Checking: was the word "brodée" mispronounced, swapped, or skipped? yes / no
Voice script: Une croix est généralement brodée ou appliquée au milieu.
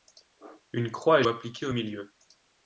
yes